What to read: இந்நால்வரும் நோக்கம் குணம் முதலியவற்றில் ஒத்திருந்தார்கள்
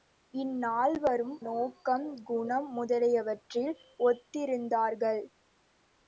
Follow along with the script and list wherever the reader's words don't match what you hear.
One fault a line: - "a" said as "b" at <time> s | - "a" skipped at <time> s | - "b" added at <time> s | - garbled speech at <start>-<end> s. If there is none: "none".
none